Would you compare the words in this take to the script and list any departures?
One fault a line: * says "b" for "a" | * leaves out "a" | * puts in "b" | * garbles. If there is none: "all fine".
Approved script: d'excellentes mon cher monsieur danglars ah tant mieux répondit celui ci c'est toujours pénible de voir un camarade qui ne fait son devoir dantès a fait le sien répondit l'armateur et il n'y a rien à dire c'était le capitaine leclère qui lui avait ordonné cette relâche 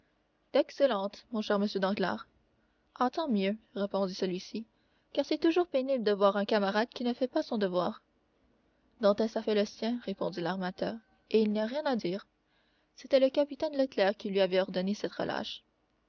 * puts in "car"
* puts in "pas"